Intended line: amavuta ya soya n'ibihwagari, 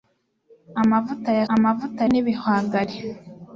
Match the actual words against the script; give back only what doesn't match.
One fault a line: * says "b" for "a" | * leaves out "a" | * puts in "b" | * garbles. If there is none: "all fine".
* says "amavuta" for "soya"